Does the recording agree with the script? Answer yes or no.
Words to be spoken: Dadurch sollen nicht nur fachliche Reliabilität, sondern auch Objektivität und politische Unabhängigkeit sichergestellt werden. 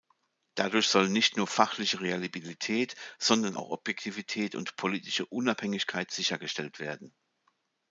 yes